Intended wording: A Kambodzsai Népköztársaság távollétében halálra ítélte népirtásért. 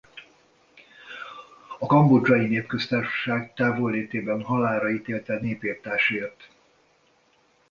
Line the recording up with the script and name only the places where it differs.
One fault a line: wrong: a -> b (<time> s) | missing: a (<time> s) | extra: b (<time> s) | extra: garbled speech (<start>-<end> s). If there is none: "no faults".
no faults